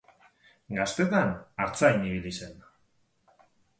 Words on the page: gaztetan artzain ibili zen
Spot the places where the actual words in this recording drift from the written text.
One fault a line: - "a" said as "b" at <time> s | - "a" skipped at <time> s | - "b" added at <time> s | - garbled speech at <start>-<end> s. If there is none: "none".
none